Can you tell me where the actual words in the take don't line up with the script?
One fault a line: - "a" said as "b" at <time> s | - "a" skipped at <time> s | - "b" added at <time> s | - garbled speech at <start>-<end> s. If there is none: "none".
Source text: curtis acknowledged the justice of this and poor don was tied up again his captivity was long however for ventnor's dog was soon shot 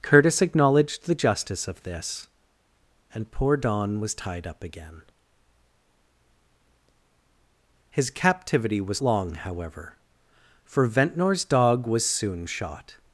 none